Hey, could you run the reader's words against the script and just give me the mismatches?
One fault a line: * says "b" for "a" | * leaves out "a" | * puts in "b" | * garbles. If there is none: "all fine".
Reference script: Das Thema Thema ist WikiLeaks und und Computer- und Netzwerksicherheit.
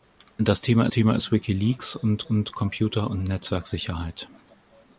all fine